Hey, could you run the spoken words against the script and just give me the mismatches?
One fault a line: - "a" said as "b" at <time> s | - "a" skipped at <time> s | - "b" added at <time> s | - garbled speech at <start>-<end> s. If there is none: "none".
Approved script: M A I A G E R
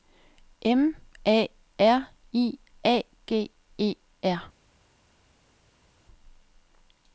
- "R" added at 1.8 s